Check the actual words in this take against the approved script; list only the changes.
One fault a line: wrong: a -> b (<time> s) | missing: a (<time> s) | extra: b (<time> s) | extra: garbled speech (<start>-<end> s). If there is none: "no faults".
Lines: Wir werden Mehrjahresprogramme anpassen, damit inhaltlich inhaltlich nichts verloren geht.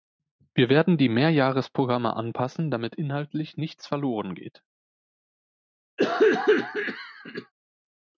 extra: die (1.0 s)
missing: inhaltlich (3.5 s)